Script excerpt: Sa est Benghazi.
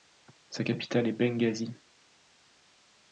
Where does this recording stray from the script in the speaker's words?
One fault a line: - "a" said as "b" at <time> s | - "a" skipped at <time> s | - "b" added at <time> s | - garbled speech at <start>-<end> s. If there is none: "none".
- "capitale" added at 0.6 s